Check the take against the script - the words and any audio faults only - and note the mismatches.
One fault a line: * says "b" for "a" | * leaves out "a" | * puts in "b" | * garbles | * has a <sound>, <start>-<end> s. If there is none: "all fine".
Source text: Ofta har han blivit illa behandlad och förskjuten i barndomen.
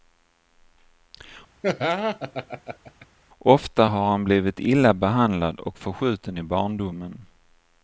* has a laugh, 1.6-3.1 s